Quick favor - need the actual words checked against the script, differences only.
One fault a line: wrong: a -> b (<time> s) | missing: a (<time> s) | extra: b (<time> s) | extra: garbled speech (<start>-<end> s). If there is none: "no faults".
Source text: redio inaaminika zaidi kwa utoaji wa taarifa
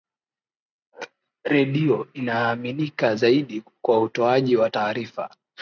no faults